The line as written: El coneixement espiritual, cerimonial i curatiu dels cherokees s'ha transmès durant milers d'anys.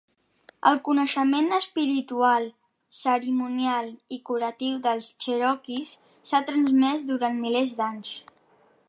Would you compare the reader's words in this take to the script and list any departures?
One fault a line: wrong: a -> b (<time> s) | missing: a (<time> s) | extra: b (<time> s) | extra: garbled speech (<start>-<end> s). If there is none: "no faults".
no faults